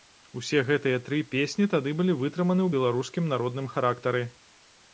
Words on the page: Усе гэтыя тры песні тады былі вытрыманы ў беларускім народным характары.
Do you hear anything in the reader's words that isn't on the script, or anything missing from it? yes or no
no